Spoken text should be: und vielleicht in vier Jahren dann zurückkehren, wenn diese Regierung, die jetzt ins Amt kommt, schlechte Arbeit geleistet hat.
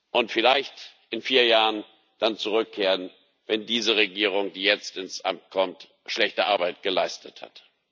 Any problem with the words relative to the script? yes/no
no